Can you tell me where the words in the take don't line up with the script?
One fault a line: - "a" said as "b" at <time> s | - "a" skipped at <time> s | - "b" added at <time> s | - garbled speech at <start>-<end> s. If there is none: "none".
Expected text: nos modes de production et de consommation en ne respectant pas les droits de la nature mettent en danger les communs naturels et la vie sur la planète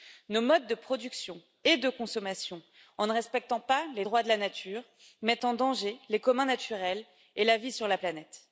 none